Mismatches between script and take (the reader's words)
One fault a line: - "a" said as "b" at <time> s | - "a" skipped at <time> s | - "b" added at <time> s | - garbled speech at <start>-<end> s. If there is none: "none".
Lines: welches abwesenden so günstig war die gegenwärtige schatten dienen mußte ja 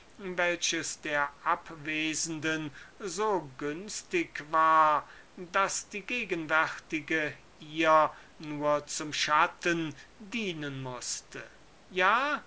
- "der" added at 1.0 s
- "daß" added at 5.3 s
- "ihr nur zum" added at 7.6 s